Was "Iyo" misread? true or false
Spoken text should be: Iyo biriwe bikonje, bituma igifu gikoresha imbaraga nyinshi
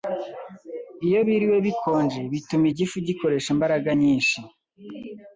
false